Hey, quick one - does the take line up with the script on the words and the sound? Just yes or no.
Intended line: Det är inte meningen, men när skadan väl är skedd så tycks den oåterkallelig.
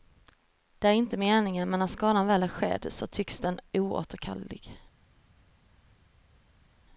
yes